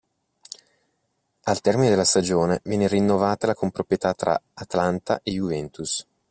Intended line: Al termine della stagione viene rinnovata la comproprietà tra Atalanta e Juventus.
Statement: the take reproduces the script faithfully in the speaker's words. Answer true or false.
true